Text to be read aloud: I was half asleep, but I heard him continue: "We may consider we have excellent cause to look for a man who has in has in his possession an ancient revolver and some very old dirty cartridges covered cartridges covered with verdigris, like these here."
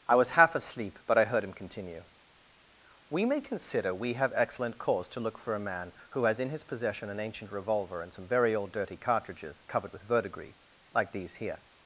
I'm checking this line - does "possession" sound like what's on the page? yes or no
yes